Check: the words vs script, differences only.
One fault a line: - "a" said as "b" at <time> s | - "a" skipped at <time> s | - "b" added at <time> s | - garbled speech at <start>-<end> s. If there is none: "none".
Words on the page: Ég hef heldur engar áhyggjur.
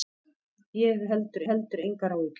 - "heldur" added at 1.5 s